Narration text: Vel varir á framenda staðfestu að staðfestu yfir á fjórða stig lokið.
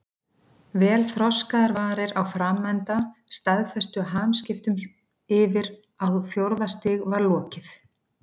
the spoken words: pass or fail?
fail